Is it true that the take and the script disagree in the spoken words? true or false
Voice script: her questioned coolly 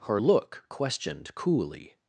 true